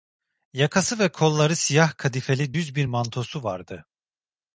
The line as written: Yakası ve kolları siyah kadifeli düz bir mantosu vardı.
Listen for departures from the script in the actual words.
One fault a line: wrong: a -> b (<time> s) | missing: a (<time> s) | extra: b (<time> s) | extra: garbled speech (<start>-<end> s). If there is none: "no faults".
no faults